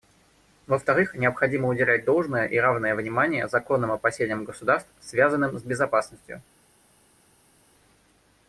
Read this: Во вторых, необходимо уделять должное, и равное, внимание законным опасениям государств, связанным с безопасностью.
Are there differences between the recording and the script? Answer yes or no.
no